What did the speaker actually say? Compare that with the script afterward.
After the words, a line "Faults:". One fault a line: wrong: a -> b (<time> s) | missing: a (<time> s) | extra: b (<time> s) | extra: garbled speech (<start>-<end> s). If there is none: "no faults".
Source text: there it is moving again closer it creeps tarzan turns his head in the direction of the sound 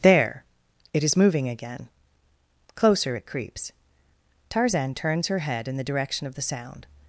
there it is moving again closer it creeps tarzan turns her head in the direction of the sound
Faults:
wrong: his -> her (5.3 s)